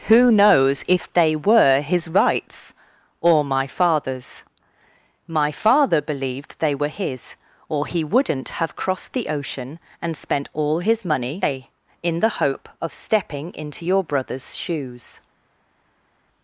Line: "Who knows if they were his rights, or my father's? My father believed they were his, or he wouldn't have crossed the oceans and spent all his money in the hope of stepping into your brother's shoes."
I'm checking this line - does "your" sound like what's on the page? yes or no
yes